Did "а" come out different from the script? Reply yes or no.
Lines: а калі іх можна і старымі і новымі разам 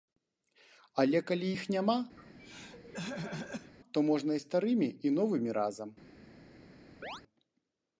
yes